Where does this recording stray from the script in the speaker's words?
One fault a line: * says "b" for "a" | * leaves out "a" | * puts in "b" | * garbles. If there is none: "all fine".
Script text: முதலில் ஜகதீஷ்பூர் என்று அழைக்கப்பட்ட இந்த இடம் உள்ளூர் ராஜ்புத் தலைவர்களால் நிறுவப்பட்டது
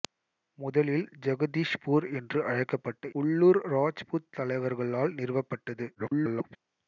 * leaves out "இந்த இடம்"
* garbles